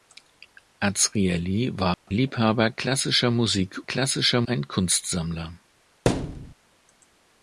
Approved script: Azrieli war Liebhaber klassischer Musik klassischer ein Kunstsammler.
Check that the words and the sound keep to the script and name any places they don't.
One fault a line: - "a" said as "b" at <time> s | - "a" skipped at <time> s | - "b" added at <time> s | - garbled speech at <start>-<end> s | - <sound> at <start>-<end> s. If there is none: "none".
- dropout at 1.9-2.1 s
- thud at 6.1-6.5 s